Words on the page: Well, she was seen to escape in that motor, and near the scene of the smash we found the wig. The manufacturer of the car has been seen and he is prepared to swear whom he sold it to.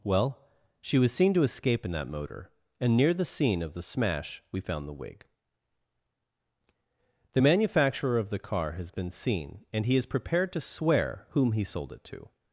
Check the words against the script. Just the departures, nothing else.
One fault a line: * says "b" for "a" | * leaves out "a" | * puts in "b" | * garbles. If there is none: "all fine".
all fine